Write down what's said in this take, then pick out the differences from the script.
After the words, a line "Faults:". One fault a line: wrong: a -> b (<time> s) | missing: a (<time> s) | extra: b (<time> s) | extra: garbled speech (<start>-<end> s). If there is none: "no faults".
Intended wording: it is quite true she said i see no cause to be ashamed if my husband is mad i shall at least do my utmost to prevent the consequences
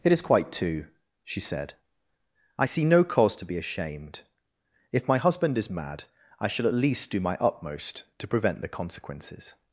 it is quite two she said i see no cause to be ashamed if my husband is mad i shall at least do my utmost to prevent the consequences
Faults:
wrong: true -> two (0.5 s)